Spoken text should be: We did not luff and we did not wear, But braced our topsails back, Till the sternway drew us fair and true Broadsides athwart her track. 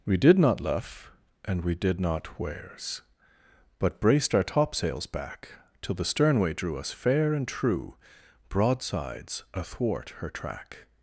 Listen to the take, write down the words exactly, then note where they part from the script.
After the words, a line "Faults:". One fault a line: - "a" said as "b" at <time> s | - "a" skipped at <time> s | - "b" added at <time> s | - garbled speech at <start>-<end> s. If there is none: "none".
We did not luff and we did not wears, But braced our topsails back, Till the sternway drew us fair and true Broadsides athwart her track.
Faults:
- "wear" said as "wears" at 2.4 s